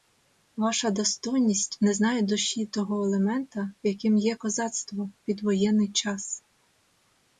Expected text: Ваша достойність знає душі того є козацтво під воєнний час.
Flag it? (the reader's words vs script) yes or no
yes